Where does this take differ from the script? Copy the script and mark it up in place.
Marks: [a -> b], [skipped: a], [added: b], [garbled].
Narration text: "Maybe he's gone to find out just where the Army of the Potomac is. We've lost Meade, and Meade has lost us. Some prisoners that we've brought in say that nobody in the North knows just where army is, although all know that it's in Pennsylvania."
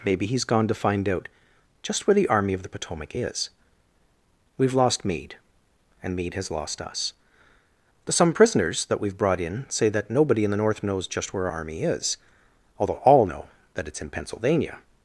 "Maybe he's gone to find out just where the Army of the Potomac is. We've lost Meade, and Meade has lost us. Some prisoners that we've brought in say that nobody in the North knows just where army is, although all know that it's in Pennsylvania."